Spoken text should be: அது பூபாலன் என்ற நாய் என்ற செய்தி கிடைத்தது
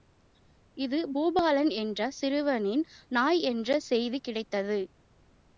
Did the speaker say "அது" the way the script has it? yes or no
no